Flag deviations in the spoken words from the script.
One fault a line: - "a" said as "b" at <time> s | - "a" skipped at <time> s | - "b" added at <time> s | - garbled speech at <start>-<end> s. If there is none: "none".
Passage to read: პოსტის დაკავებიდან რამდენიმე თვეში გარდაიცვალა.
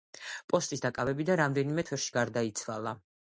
none